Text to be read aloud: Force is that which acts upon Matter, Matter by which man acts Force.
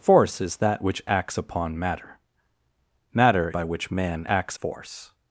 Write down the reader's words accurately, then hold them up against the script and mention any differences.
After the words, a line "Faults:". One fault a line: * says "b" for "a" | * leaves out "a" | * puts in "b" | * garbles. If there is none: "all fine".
Force is that which acts upon Matter, Matter by which man acts Force.
Faults:
all fine